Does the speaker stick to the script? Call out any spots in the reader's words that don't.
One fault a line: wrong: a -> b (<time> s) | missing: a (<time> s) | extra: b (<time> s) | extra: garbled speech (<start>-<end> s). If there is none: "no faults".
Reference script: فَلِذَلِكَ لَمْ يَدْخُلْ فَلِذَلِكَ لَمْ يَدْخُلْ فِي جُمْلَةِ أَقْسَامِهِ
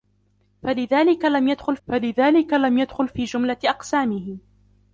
no faults